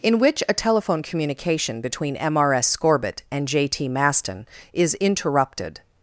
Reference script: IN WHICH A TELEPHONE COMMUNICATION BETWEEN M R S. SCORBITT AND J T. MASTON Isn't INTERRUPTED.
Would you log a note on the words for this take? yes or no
yes